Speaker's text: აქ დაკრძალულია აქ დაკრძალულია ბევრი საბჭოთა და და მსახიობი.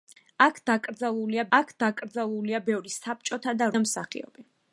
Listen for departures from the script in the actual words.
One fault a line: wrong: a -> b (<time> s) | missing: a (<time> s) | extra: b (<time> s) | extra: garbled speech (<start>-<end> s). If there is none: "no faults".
no faults